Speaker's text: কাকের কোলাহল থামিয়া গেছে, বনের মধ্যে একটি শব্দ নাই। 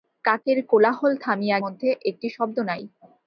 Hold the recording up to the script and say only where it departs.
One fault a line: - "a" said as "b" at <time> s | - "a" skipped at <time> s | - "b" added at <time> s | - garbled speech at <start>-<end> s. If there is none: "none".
- "গেছে বনের" skipped at 1.6 s